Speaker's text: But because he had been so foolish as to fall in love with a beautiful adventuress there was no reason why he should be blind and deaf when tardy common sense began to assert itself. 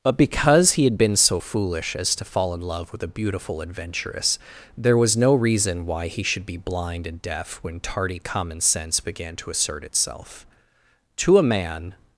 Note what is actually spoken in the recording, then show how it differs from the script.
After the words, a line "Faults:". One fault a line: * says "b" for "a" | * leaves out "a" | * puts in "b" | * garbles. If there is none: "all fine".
But because he had been so foolish as to fall in love with a beautiful adventuress there was no reason why he should be blind and deaf when tardy common sense began to assert itself. To a man
Faults:
* puts in "To a man"